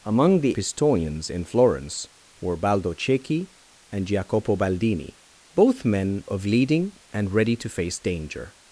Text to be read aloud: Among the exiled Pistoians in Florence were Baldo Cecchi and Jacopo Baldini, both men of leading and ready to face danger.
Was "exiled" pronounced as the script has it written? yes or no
no